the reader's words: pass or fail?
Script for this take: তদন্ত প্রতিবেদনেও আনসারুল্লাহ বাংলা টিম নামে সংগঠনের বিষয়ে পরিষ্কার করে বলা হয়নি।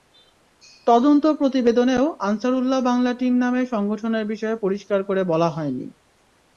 pass